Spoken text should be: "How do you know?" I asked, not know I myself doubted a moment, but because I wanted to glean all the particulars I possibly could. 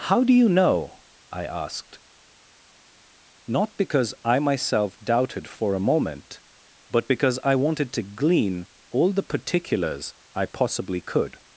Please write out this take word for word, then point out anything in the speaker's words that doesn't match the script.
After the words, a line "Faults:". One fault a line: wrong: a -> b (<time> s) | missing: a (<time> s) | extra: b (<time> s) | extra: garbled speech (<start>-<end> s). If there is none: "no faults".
"How do you know?" I asked, not because I myself doubted for a moment, but because I wanted to glean all the particulars I possibly could.
Faults:
wrong: know -> because (3.8 s)
extra: for (5.5 s)